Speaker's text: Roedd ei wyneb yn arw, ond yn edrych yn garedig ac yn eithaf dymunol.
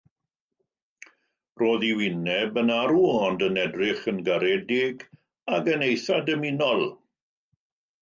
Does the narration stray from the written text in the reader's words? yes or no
no